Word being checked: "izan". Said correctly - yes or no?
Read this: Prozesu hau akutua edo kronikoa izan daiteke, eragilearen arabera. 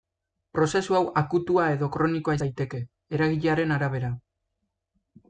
no